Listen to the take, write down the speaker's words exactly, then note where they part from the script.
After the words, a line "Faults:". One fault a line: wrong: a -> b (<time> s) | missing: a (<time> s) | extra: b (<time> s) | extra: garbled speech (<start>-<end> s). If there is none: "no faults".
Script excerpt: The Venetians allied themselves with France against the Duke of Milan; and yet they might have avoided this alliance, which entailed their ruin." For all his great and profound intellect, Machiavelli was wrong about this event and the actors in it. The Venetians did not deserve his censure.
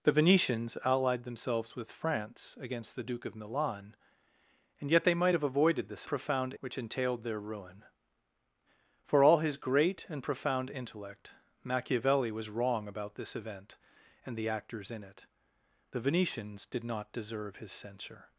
The Venetians allied themselves with France against the Duke of Milan; and yet they might have avoided this profound, which entailed their ruin." For all his great and profound intellect, Machiavelli was wrong about this event and the actors in it. The Venetians did not deserve his censure.
Faults:
wrong: alliance -> profound (6.1 s)